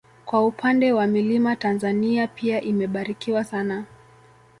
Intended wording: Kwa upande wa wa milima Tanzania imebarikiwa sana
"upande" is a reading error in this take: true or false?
false